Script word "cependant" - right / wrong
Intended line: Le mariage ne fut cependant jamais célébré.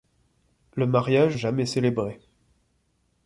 wrong